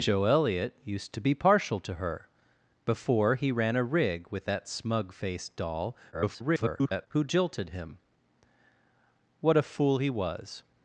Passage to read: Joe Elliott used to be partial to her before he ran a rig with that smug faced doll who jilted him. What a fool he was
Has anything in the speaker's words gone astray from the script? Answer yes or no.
yes